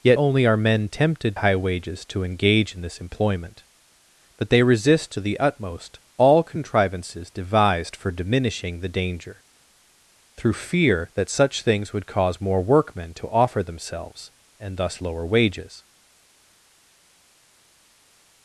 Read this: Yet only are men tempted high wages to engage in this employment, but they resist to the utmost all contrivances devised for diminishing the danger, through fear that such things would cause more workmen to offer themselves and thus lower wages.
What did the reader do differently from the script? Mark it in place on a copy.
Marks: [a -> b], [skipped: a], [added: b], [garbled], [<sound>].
Yet only are men tempted high wages to engage in this employment, but they resist to the utmost all contrivances devised for diminishing the danger, through fear that such things would cause more workmen to offer themselves and thus lower wages.